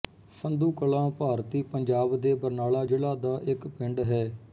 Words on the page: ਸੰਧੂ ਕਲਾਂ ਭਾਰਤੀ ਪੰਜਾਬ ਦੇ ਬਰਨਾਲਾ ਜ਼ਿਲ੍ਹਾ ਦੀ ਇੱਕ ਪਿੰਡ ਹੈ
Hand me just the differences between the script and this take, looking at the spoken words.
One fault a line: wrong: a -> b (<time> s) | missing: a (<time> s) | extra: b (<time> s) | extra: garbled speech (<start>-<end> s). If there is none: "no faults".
wrong: ਦੀ -> ਦਾ (3.2 s)